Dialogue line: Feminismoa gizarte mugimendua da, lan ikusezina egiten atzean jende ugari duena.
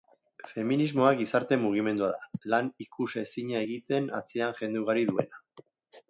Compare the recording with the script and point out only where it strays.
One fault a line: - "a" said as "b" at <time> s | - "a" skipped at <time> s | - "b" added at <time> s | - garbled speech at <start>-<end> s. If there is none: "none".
none